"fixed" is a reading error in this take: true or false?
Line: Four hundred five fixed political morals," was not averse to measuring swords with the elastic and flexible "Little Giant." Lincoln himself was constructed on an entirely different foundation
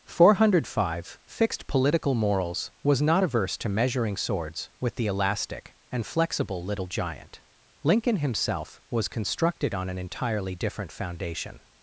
false